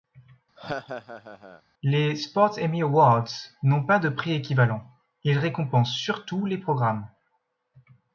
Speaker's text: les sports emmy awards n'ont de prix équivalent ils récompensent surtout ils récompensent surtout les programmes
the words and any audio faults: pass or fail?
fail